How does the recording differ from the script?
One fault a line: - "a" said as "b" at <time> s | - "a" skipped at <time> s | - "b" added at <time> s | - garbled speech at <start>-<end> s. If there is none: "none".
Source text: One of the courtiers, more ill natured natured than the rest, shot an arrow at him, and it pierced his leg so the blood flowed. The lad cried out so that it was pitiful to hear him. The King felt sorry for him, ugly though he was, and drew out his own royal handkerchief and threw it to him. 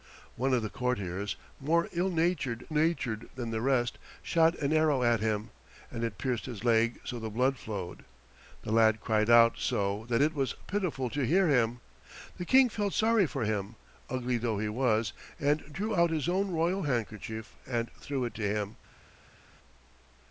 none